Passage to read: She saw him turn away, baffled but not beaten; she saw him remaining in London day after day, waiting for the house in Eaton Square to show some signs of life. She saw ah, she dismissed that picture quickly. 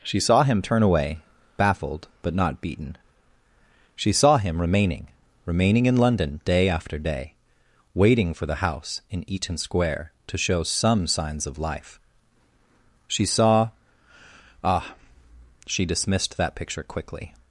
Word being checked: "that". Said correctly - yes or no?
yes